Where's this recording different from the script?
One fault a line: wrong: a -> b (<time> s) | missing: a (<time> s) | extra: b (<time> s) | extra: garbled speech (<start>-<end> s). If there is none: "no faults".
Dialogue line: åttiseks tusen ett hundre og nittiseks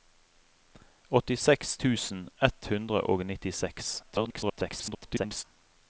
extra: garbled speech (4.0-5.4 s)